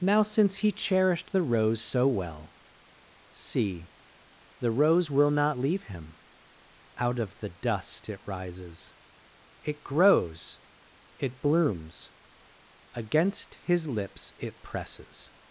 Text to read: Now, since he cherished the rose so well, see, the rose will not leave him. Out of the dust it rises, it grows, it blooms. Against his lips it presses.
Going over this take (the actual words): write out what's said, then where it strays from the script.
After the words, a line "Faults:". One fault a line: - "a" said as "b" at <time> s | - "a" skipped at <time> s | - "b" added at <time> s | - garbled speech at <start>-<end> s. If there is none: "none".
Now, since he cherished the rose so well, see, the rose will not leave him. Out of the dust it rises, it grows, it blooms. Against his lips it presses.
Faults:
none